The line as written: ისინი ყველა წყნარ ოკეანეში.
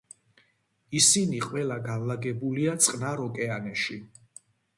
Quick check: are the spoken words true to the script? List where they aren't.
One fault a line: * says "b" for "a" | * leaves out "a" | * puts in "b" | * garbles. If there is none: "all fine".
* puts in "განლაგებულია"